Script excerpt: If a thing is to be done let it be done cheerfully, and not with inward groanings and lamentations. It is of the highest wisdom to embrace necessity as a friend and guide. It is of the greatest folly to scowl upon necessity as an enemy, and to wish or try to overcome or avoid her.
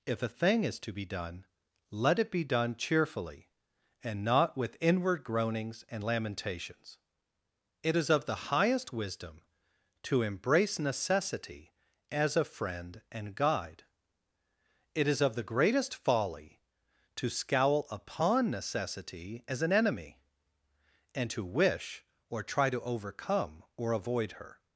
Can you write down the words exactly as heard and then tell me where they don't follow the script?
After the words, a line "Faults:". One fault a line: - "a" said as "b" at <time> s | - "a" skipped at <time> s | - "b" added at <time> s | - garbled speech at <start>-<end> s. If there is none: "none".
If a thing is to be done let it be done cheerfully, and not with inward groanings and lamentations. It is of the highest wisdom to embrace necessity as a friend and guide. It is of the greatest folly to scowl upon necessity as an enemy, and to wish or try to overcome or avoid her.
Faults:
none